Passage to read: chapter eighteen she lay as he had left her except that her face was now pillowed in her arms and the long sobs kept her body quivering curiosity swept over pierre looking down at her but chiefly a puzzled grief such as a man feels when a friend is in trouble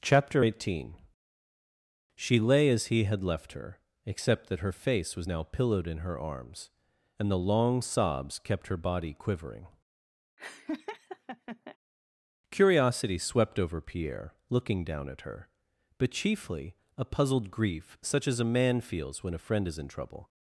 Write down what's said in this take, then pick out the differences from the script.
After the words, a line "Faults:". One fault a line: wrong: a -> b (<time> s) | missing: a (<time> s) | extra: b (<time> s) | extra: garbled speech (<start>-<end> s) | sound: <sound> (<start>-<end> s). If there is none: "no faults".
chapter eighteen she lay as he had left her except that her face was now pillowed in her arms and the long sobs kept her body quivering curiosity swept over pierre looking down at her but chiefly a puzzled grief such as a man feels when a friend is in trouble
Faults:
sound: laugh (10.4-11.8 s)